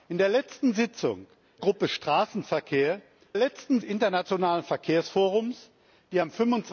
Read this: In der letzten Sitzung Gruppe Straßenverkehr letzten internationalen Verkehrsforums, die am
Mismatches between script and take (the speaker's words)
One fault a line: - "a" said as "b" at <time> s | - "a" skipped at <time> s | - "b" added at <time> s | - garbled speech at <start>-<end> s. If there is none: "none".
none